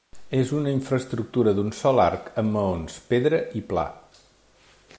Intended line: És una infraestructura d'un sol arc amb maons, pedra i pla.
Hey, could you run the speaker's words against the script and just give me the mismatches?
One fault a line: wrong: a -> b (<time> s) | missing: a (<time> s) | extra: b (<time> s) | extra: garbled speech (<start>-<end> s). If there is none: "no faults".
no faults